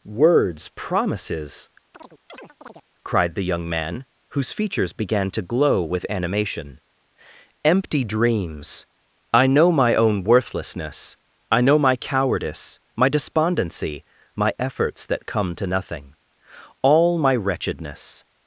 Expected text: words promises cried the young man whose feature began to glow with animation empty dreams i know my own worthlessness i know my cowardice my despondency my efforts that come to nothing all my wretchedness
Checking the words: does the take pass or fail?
fail